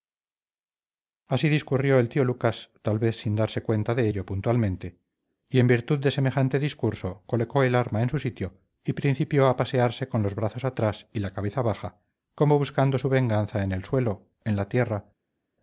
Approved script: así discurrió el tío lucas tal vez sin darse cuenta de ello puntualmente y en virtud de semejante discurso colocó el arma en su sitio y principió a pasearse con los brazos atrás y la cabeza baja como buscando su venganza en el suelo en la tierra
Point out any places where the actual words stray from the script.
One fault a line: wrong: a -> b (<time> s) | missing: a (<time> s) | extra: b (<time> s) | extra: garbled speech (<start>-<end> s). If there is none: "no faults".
no faults